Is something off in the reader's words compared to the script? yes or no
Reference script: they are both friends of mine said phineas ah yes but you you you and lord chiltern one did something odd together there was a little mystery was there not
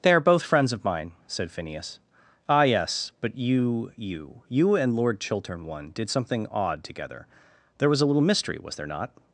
no